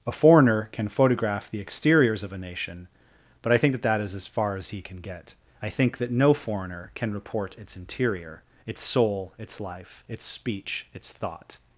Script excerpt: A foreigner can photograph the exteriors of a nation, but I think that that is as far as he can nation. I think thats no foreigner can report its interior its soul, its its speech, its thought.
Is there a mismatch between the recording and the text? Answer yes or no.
yes